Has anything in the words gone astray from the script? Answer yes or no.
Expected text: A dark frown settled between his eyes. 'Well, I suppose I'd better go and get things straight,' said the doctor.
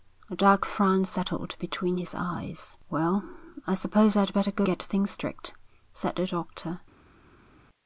yes